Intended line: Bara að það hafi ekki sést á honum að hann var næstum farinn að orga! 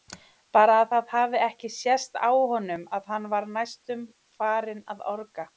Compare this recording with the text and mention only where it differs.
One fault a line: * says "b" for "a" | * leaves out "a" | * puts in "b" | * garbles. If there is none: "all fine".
all fine